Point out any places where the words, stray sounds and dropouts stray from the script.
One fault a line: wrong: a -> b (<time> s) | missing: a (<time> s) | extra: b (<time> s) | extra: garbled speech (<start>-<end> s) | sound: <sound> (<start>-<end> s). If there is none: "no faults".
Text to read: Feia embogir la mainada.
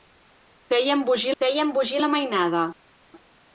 extra: feia embogir (1.4 s)